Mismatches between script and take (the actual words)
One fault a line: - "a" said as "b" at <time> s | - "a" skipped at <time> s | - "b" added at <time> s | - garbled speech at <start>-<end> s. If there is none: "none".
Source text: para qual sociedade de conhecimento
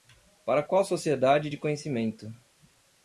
none